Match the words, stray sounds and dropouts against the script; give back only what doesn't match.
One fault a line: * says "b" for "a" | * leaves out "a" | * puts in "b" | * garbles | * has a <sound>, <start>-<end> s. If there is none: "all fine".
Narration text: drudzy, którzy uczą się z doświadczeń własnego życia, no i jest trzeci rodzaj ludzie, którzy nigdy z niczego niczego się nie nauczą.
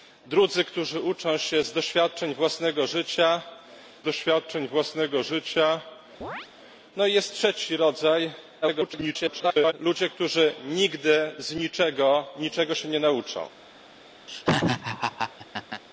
* puts in "doświadczeń własnego życia"
* has a chirp, 6.2-6.5 s
* garbles
* has a laugh, 14.3-15.8 s